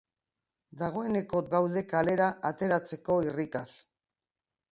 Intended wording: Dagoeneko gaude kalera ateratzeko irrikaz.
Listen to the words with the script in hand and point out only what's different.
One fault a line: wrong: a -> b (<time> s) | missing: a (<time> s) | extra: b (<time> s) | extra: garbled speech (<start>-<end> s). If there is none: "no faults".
no faults